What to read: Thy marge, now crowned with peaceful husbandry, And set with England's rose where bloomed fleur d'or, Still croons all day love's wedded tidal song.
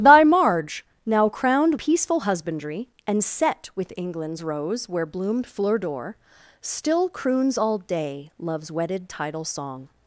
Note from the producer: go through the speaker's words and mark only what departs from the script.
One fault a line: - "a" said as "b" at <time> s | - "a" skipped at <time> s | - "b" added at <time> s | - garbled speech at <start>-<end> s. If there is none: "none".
- "with" skipped at 1.8 s